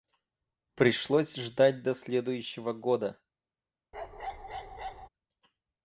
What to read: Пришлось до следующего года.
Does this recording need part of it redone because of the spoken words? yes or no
yes